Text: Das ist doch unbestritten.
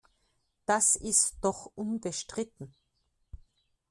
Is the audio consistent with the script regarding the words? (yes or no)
yes